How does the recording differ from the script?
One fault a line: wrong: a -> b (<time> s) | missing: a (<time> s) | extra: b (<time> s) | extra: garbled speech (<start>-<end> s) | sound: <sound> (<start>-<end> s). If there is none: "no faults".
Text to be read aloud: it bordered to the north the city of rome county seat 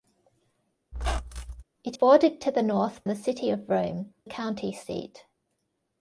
sound: squeak (0.9-1.6 s)